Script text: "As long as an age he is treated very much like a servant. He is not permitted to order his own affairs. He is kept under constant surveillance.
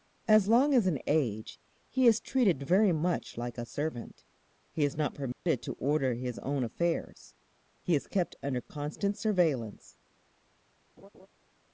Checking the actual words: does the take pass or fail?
pass